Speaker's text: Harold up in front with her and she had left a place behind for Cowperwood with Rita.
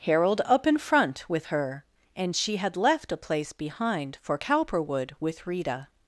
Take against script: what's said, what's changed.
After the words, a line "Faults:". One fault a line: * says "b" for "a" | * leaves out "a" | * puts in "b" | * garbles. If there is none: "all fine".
Harold up in front with her and she had left a place behind for Cowperwood with Rita.
Faults:
all fine